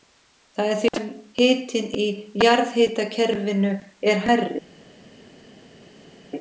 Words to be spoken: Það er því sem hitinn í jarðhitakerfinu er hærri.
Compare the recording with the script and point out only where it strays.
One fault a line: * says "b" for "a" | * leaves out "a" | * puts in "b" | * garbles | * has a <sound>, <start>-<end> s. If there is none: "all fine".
all fine